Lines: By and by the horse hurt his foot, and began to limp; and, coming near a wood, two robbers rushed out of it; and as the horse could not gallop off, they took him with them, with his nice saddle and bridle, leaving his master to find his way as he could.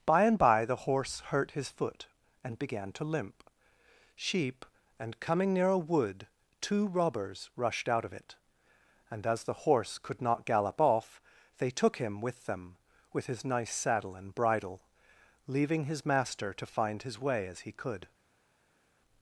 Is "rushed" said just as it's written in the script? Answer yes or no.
yes